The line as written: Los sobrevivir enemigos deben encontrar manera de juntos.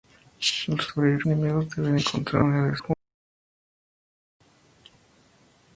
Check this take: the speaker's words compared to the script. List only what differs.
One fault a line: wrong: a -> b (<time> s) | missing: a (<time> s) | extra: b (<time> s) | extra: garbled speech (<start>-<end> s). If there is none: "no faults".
no faults